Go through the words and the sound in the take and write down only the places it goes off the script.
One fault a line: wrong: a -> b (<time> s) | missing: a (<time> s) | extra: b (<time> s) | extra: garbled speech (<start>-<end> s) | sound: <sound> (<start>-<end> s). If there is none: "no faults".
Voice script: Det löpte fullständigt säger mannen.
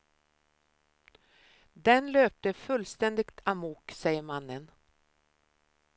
wrong: Det -> Den (1.7 s)
extra: amok (3.4 s)